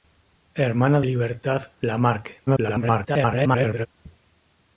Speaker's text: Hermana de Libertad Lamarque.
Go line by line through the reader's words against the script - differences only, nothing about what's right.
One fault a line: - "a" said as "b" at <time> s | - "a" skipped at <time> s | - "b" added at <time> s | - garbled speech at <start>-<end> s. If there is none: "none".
- "de" skipped at 1.0 s
- garbled speech at 2.5-3.9 s